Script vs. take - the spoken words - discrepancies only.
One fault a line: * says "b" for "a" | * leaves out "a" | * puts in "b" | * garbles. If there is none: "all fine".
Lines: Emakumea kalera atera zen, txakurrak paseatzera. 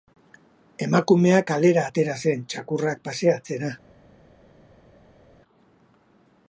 all fine